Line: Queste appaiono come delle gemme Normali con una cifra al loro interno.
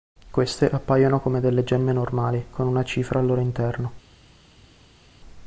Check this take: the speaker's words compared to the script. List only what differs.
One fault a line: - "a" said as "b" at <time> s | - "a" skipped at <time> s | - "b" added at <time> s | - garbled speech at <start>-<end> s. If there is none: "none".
none